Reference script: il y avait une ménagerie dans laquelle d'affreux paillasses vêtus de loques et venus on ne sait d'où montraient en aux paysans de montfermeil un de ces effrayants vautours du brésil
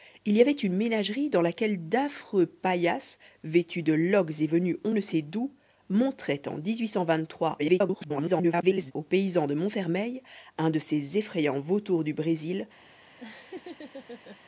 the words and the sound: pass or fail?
fail